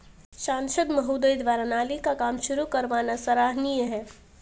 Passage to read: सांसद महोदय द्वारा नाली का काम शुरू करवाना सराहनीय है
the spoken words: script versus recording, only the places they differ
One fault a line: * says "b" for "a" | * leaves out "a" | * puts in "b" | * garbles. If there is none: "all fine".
all fine